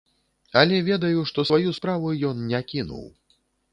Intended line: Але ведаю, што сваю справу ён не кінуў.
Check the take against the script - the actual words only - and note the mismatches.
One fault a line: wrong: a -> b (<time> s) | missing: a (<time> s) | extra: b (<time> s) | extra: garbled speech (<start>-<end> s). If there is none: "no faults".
no faults